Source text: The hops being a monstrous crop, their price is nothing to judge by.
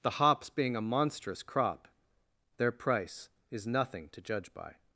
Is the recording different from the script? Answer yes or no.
no